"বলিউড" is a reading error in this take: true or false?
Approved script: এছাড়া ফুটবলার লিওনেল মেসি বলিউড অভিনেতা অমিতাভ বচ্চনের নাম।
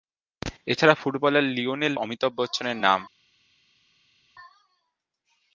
true